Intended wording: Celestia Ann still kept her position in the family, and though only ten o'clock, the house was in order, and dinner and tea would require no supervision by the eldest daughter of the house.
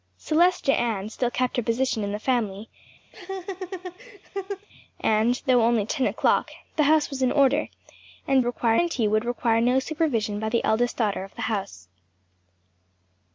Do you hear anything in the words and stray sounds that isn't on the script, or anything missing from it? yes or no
yes